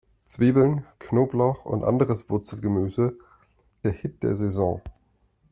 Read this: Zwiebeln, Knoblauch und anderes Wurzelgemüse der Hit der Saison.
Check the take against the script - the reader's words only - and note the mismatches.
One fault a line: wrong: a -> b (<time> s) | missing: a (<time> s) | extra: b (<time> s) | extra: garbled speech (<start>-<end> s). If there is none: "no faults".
no faults